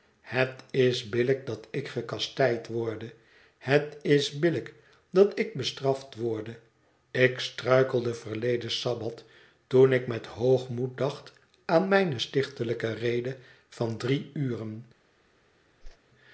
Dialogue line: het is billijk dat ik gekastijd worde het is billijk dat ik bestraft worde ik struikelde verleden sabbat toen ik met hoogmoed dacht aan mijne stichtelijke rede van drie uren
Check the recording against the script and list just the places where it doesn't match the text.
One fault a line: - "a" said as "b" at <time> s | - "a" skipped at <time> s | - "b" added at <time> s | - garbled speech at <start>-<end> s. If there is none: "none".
none